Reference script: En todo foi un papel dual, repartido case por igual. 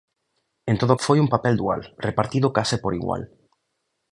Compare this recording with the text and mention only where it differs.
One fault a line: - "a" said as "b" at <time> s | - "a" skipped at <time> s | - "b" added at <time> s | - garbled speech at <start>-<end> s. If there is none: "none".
none